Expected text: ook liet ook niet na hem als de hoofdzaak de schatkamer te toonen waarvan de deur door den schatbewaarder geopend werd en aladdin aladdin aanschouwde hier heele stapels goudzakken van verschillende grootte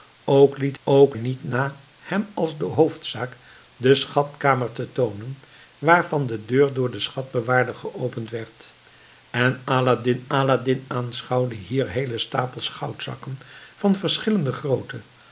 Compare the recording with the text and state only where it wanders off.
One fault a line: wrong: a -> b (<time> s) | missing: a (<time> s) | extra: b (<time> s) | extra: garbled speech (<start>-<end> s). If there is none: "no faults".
no faults